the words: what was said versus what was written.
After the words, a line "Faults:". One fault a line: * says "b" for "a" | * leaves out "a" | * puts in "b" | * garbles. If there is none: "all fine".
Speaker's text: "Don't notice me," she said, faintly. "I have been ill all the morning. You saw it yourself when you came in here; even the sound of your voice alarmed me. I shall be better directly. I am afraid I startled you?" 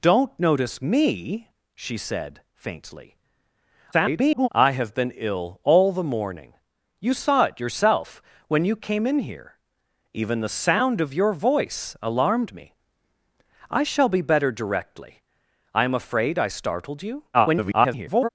"Don't notice me," she said, faintly. [garbled] "I have been ill all the morning. You saw it yourself when you came in here; even the sound of your voice alarmed me. I shall be better directly. I am afraid I startled you?" [garbled]
Faults:
* garbles
* garbles